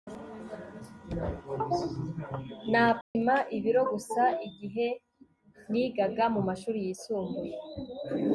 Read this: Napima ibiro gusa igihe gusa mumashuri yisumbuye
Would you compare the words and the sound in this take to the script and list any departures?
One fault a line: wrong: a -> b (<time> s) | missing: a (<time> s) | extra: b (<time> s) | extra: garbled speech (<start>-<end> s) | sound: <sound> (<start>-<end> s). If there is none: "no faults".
sound: dropout (3.0-3.2 s)
wrong: gusa -> nigaga (5.7 s)